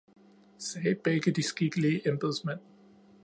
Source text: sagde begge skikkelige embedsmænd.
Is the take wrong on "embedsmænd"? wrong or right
right